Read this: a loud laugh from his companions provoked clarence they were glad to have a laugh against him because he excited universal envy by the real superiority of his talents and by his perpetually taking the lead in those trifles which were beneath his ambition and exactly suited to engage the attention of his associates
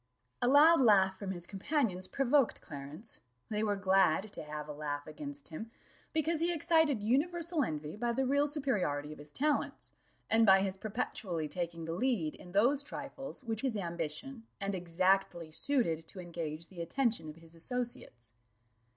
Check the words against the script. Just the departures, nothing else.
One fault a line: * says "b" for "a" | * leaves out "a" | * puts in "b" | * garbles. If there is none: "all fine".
* leaves out "were beneath"